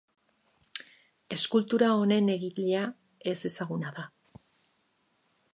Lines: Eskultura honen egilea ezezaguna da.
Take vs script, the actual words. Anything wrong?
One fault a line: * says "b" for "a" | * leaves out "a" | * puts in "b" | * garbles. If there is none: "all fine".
all fine